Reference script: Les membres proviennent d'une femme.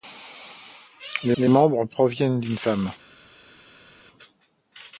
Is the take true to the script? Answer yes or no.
no